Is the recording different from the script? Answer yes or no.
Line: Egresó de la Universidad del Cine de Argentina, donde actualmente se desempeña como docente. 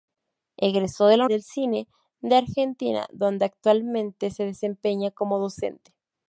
yes